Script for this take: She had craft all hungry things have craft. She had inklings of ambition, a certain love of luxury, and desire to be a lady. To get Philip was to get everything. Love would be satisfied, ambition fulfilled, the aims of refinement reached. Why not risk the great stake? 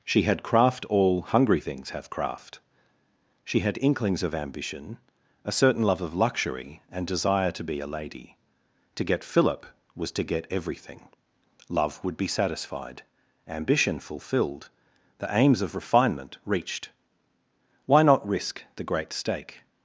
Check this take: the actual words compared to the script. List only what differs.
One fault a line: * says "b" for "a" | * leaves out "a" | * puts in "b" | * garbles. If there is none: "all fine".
all fine